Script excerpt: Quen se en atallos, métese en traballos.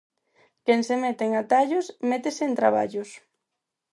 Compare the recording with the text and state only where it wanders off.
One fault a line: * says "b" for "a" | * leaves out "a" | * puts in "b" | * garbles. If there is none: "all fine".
* puts in "mete"